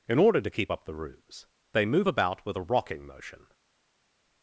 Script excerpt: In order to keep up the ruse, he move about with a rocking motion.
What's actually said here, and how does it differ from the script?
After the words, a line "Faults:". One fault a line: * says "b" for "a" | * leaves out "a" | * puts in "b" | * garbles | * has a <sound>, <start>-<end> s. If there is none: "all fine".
In order to keep up the ruse, they move about with a rocking motion.
Faults:
* says "they" for "he"